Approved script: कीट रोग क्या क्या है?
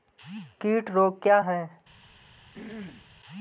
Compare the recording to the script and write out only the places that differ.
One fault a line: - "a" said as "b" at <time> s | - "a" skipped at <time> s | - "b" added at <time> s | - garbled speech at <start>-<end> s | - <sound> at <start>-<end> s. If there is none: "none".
- "क्या" skipped at 1.4 s
- throat clearing at 2.5-3.1 s